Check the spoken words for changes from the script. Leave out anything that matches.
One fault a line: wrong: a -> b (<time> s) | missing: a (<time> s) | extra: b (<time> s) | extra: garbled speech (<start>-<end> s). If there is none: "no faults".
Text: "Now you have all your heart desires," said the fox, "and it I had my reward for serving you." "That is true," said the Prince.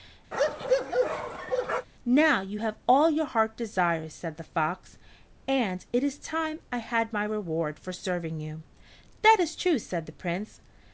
extra: is time (6.0 s)